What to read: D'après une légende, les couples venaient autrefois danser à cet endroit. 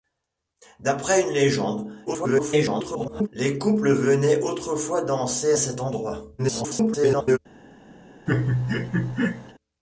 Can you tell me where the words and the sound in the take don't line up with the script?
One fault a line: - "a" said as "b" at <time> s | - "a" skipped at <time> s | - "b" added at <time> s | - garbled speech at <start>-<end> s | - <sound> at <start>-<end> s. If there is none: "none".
- garbled speech at 2.1-3.3 s
- "à" skipped at 5.5 s
- garbled speech at 6.4-7.4 s
- laugh at 8.3-9.5 s